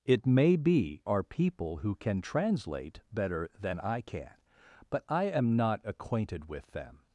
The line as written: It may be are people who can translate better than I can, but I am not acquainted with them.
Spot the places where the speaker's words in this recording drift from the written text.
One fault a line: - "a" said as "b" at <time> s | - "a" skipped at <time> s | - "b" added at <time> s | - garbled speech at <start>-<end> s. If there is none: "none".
none